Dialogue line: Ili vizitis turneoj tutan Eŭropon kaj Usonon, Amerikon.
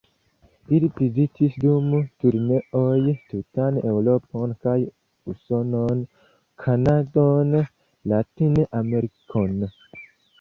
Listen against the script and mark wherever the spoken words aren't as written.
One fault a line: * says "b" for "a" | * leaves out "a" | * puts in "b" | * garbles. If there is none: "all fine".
* puts in "dum"
* puts in "Kanadon Latin"